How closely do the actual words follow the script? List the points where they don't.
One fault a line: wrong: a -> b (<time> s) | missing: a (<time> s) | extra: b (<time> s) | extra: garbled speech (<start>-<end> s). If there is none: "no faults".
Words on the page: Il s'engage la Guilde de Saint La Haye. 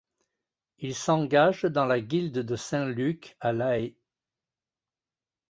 extra: dans (1.6 s)
extra: Luc à (2.9 s)